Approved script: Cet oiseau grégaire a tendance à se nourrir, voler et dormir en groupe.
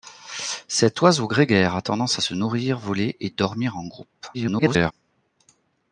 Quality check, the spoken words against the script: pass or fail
fail